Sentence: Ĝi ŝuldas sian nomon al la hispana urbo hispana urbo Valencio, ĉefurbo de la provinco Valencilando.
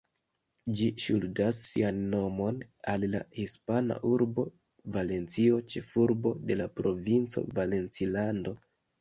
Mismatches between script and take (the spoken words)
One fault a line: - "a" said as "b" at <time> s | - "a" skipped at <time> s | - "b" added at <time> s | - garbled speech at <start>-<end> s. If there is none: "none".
- "hispana urbo" skipped at 4.4 s